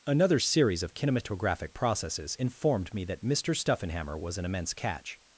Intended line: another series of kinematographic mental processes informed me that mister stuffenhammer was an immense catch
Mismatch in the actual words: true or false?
true